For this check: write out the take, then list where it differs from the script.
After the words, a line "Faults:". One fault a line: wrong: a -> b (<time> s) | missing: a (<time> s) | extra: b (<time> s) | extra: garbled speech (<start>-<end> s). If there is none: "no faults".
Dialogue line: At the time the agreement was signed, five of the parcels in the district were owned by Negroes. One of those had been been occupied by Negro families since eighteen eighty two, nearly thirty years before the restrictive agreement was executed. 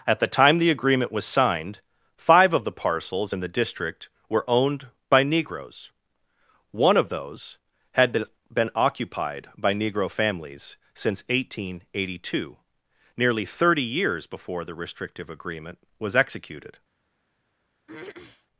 At the time the agreement was signed, five of the parcels in the district were owned by Negroes. One of those had been been occupied by Negro families since eighteen eighty two, nearly thirty years before the restrictive agreement was executed.
Faults:
no faults